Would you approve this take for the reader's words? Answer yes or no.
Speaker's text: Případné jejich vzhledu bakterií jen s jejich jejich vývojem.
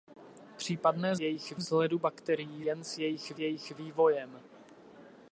yes